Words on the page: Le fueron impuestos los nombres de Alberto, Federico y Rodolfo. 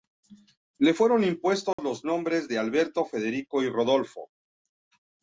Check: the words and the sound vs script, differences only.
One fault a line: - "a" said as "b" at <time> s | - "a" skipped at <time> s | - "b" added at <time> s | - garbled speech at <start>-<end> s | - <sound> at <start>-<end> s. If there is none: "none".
- dropout at 1.7-1.8 s